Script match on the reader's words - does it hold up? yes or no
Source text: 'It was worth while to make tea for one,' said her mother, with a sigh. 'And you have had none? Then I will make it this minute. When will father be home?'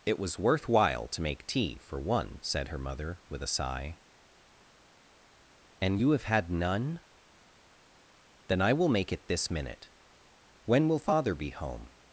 yes